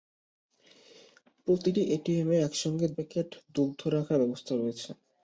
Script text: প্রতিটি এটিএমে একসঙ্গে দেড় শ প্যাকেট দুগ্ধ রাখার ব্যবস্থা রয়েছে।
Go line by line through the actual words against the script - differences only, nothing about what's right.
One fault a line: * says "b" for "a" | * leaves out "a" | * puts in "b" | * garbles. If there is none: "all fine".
* leaves out "দেড় শ"